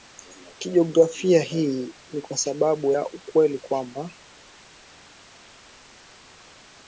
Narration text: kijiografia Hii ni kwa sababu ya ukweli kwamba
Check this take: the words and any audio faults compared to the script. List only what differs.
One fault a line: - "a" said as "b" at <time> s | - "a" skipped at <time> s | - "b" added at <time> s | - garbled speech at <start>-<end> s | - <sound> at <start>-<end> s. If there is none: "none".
none